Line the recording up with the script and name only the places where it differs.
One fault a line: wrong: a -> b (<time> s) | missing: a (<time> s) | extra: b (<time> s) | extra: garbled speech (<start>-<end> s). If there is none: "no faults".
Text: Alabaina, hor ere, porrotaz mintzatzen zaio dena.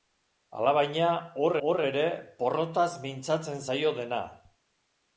extra: hor (1.7 s)